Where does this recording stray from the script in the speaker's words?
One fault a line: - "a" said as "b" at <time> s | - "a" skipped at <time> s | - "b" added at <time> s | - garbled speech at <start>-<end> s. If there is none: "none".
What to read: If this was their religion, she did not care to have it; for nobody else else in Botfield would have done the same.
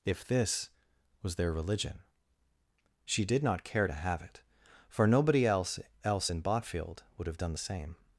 none